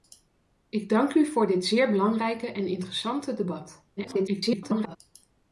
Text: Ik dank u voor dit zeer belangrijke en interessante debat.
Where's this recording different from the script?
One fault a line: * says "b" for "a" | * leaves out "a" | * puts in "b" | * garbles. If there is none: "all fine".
* garbles